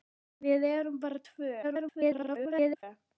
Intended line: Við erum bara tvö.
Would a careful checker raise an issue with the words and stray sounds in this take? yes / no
yes